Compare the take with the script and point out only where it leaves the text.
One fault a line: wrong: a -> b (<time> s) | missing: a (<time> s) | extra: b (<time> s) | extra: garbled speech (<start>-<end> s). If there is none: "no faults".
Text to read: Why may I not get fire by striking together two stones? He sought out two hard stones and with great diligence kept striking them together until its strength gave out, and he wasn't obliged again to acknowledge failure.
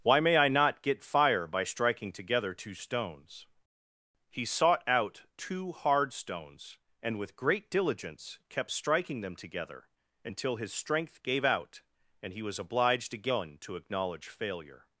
wrong: its -> his (10.6 s)
wrong: wasn't -> was (12.4 s)